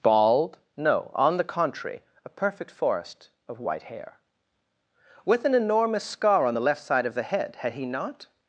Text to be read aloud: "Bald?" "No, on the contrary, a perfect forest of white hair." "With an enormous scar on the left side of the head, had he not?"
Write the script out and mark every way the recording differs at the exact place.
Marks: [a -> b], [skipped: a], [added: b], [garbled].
"Bald?" "No, on the contrary, a perfect forest of white hair." "With an enormous scar on the left side of the head, had he not?"